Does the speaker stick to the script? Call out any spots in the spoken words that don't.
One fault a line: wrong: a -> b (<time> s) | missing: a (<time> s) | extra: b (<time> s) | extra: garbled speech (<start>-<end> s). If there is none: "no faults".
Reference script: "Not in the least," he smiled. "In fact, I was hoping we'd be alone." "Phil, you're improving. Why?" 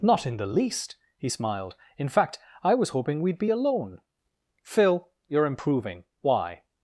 no faults